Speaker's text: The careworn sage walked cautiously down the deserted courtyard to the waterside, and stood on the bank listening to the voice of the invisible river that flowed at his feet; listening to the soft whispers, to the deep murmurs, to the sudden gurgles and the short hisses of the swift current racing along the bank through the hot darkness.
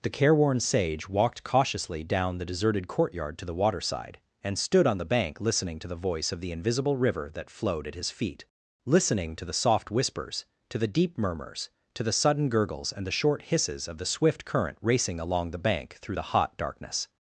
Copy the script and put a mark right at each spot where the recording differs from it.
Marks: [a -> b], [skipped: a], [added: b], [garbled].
The careworn sage walked cautiously down the deserted courtyard to the waterside, and stood on the bank listening to the voice of the invisible river that flowed at his feet; listening to the soft whispers, to the deep murmurs, to the sudden gurgles and the short hisses of the swift current racing along the bank through the hot darkness.